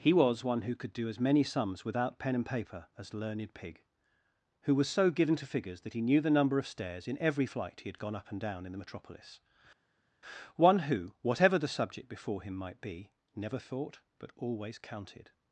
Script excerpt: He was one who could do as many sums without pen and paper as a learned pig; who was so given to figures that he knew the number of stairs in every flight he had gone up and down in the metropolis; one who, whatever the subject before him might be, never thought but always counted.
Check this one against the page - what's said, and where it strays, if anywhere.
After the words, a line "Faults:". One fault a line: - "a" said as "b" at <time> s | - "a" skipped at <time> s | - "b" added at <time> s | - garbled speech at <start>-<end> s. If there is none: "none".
He was one who could do as many sums without pen and paper as learned pig; who was so given to figures that he knew the number of stairs in every flight he had gone up and down in the metropolis; one who, whatever the subject before him might be, never thought but always counted.
Faults:
- "a" skipped at 3.1 s